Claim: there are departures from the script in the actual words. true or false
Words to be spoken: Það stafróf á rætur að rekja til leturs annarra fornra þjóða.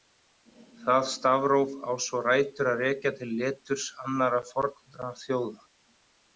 true